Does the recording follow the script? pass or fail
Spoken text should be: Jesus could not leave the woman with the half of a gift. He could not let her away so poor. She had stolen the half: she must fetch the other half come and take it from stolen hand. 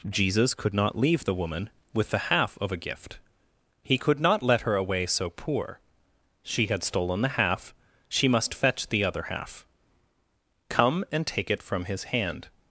fail